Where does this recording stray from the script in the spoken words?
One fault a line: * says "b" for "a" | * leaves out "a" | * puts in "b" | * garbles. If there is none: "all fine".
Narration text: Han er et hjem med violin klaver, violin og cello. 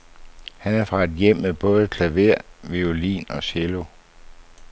* puts in "fra"
* says "både" for "violin"